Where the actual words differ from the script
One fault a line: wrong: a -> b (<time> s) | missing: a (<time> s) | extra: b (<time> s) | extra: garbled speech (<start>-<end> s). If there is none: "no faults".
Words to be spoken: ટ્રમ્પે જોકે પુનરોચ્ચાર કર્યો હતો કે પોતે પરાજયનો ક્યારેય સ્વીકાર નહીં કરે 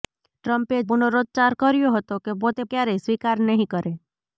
missing: જોકે (0.8 s)
missing: પરાજયનો (2.6 s)